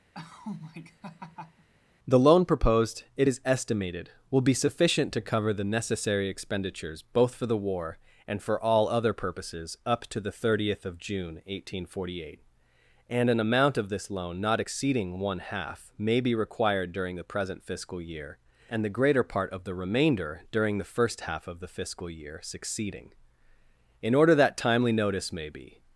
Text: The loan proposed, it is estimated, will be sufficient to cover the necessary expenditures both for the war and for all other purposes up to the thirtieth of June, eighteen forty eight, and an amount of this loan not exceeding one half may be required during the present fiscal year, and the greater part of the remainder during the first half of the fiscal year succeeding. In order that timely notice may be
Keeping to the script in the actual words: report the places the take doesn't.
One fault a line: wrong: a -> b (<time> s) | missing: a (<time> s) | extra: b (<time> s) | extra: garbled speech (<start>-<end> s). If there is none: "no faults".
no faults